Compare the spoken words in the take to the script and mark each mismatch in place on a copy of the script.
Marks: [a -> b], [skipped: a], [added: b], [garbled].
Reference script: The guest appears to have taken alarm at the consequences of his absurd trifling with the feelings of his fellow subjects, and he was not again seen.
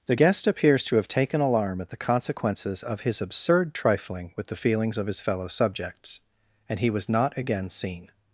The guest appears to have taken alarm at the consequences of his absurd trifling with the feelings of his fellow subjects, and he was not again seen.